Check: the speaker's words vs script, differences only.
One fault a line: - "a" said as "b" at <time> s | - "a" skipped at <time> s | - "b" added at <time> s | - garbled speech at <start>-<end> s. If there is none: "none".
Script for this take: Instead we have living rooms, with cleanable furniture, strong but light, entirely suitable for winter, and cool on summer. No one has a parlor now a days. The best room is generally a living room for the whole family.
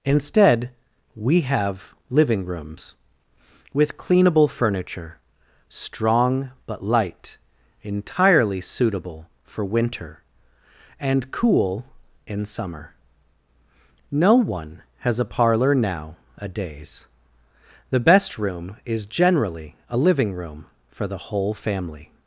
- "on" said as "in" at 12.3 s